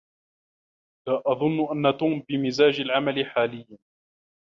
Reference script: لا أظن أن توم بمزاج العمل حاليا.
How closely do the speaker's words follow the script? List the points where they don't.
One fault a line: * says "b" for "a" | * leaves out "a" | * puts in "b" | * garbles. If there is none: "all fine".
all fine